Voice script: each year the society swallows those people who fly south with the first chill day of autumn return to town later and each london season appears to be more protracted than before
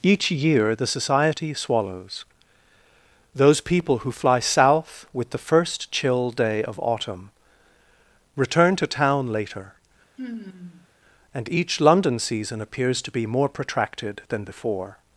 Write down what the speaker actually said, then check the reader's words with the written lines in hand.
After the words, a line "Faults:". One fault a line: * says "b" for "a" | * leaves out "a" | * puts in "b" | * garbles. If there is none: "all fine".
each year the society swallows those people who fly south with the first chill day of autumn return to town later and each london season appears to be more protracted than before
Faults:
all fine